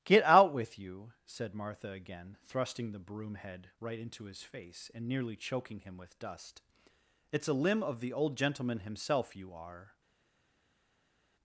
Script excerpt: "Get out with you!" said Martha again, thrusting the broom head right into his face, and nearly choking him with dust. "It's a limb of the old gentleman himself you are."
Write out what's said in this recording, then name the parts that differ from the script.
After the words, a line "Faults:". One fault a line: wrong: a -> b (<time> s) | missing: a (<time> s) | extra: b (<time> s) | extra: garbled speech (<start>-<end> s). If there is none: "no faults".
"Get out with you!" said Martha again, thrusting the broom head right into his face, and nearly choking him with dust. "It's a limb of the old gentleman himself you are."
Faults:
no faults